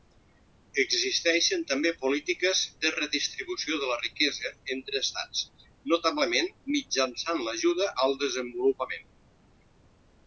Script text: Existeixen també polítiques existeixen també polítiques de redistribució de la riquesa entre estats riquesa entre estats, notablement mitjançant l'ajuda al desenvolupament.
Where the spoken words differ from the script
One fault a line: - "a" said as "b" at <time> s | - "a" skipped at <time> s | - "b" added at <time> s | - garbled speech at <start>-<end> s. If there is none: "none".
- "existeixen també polítiques" skipped at 2.6 s
- "riquesa entre estats" skipped at 5.5 s